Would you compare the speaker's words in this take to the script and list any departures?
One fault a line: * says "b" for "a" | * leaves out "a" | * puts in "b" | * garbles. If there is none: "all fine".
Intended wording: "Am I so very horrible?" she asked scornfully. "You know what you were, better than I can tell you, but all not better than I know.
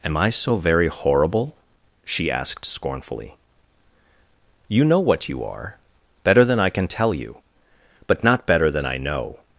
* says "are" for "were"
* leaves out "all"